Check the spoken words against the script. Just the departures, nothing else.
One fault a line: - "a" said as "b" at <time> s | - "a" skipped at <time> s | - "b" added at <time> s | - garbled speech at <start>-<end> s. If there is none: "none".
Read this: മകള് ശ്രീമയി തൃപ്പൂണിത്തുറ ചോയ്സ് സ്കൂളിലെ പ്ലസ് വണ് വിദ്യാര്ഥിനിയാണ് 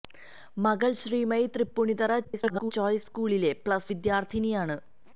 - garbled speech at 2.2-2.7 s
- "വണ്" skipped at 3.9 s